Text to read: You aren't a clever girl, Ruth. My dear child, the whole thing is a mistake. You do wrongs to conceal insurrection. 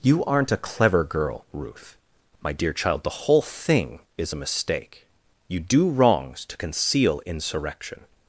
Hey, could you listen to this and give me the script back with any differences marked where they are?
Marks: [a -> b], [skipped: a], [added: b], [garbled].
You aren't a clever girl, Ruth. My dear child, the whole thing is a mistake. You do wrongs to conceal insurrection.